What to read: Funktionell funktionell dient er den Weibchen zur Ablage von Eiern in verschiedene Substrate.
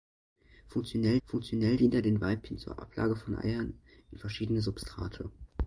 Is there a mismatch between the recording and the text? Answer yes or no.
no